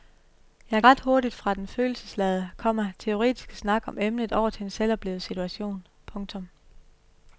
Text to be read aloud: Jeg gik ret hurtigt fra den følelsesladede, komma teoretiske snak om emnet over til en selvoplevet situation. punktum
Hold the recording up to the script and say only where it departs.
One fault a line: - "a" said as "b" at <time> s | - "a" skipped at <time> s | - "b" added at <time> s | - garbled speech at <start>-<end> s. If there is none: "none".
- "gik" skipped at 0.8 s